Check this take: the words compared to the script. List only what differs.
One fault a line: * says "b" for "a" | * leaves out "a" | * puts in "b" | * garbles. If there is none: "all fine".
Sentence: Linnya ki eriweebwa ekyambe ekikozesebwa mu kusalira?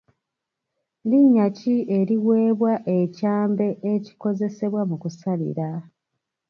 all fine